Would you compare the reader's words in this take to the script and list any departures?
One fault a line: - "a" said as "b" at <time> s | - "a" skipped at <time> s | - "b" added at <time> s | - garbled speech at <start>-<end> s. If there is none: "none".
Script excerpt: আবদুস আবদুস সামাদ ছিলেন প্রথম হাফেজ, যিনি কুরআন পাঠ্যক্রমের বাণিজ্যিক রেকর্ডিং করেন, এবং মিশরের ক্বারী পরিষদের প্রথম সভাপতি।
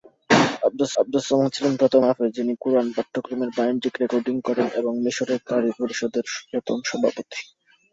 none